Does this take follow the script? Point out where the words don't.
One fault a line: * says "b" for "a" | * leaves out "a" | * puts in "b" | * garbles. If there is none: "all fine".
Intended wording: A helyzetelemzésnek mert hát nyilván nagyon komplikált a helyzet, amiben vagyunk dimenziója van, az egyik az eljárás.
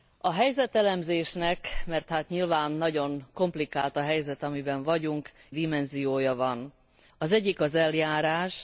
all fine